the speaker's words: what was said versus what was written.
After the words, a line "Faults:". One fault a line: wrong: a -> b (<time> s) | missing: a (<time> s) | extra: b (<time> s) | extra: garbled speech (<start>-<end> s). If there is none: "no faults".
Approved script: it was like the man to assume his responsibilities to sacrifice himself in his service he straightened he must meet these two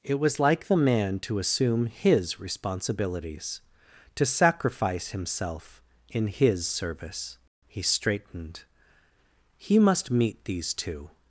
it was like the man to assume his responsibilities to sacrifice himself in his service he straightened he must meet these two
Faults:
no faults